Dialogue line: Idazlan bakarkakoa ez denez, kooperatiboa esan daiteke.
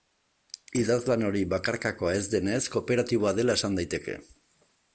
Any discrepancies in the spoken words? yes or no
yes